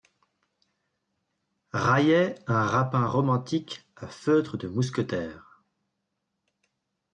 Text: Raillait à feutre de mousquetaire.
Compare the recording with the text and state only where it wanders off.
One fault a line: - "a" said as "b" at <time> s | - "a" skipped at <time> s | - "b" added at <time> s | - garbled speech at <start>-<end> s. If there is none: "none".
- "un rapin romantique" added at 2.5 s